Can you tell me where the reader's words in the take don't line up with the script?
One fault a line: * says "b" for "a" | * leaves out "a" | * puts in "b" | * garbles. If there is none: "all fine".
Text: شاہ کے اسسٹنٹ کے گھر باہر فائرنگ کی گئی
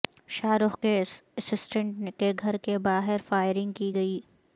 * puts in "رخ"
* puts in "کے"